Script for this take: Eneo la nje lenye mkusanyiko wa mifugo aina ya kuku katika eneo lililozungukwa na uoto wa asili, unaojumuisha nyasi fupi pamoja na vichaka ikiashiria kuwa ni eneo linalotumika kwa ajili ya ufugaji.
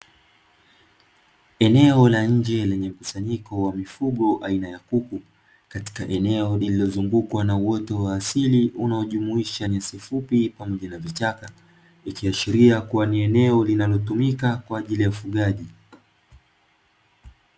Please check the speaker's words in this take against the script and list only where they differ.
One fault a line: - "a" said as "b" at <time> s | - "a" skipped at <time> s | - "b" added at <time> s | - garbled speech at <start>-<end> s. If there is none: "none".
none